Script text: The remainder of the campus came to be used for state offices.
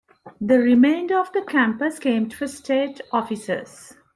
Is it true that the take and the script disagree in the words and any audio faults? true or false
true